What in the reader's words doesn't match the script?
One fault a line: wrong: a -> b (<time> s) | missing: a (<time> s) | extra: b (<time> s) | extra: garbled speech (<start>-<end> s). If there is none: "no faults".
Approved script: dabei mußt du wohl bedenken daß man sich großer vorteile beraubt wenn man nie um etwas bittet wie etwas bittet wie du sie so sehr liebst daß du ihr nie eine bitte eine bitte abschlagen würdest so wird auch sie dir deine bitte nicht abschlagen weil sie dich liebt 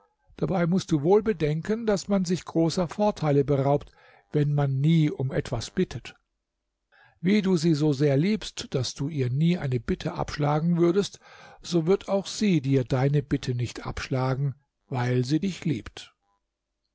missing: etwas bittet wie (7.4 s)
missing: eine bitte (10.1 s)